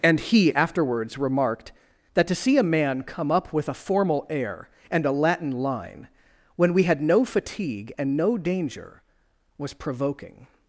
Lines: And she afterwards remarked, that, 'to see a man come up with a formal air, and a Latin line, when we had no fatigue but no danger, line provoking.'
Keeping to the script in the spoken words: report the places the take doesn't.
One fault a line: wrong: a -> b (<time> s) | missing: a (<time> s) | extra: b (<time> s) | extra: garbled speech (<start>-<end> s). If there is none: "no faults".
wrong: she -> he (0.2 s)
wrong: but -> and (8.0 s)
wrong: line -> was (9.6 s)